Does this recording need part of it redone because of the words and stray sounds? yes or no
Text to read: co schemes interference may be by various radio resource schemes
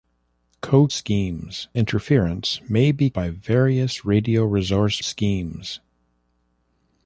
no